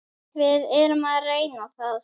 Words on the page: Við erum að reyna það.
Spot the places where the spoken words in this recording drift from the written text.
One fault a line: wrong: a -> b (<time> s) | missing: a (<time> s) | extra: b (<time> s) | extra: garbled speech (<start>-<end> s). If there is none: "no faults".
no faults